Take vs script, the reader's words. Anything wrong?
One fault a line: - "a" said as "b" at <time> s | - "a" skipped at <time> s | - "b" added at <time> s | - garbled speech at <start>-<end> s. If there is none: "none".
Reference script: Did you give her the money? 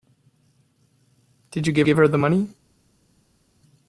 - "give" added at 1.8 s